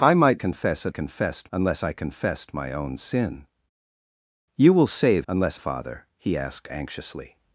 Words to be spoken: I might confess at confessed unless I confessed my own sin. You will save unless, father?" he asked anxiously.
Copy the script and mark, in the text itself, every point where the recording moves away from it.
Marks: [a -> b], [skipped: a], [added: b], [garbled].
I might confess at confessed unless I confessed my own sin. You will save unless, father?" he asked anxiously.